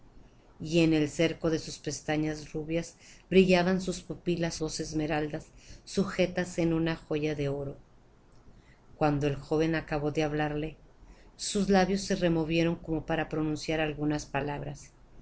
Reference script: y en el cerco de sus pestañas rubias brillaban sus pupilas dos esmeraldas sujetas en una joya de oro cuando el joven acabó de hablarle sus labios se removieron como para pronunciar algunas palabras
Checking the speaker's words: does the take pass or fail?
pass